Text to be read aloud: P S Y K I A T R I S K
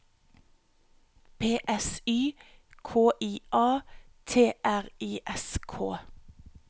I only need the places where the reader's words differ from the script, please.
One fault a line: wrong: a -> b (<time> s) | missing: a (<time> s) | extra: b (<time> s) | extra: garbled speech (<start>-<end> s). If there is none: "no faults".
no faults